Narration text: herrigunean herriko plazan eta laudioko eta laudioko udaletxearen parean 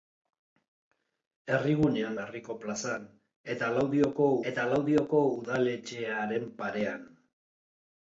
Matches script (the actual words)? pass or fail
pass